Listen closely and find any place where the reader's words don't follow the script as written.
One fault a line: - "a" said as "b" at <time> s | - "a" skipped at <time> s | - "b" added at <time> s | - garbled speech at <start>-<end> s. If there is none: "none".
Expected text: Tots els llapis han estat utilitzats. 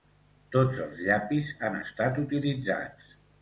none